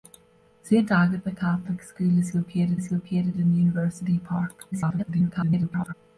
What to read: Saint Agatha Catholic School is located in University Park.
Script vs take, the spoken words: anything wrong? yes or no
yes